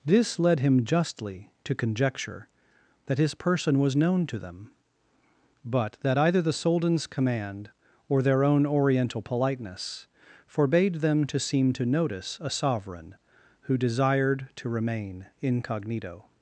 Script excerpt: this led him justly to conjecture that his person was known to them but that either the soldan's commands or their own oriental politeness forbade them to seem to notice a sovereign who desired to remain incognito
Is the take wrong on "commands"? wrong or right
wrong